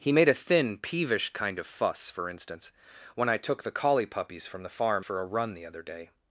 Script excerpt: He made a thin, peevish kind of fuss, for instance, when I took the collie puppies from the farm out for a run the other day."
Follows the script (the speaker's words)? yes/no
no